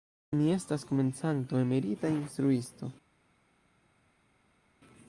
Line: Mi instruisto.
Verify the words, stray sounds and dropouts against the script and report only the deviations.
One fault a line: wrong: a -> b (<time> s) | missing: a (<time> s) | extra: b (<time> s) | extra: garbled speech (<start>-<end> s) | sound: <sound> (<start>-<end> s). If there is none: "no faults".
extra: estas komencanto emerita (0.5 s)